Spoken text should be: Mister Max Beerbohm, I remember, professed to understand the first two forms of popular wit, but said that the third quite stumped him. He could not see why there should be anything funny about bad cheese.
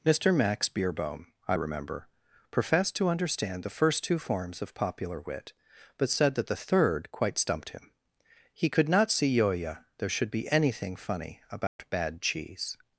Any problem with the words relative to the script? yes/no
yes